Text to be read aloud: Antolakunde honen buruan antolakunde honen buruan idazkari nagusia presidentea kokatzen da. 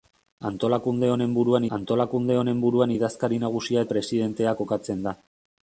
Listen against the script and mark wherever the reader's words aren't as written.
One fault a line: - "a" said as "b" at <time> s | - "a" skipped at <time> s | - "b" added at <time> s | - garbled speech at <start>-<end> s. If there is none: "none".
none